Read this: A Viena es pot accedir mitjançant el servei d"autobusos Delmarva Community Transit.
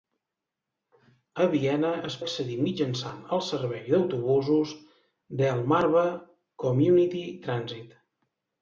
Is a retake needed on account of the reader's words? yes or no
yes